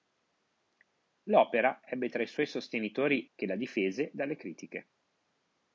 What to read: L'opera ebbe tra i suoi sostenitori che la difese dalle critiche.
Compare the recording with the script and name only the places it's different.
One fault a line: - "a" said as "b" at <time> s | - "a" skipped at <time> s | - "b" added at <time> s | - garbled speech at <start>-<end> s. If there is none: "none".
none